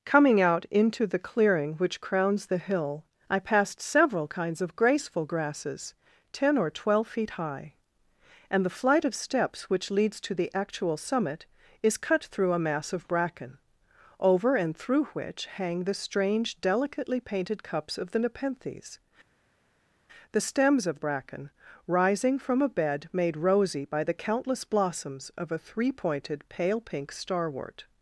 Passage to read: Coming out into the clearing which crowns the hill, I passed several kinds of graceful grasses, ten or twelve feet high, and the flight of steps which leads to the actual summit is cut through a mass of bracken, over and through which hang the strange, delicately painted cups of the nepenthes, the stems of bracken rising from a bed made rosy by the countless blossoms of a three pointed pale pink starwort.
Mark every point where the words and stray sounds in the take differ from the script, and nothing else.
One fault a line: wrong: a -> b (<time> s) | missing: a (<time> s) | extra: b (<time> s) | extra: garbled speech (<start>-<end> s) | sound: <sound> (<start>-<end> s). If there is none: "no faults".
no faults